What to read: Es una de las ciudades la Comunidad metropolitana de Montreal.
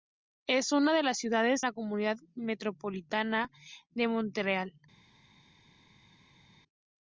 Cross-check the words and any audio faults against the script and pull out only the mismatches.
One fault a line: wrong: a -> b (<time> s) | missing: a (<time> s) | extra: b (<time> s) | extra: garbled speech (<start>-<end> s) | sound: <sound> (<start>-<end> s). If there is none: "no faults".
no faults